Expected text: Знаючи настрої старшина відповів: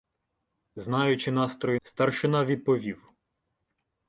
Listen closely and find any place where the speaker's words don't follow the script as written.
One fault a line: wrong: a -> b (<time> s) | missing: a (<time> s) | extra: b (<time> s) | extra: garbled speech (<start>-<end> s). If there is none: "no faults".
no faults